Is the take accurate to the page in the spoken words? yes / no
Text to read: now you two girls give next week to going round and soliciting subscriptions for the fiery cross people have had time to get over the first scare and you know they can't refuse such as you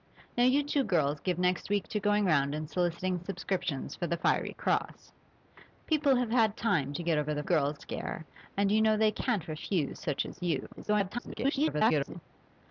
no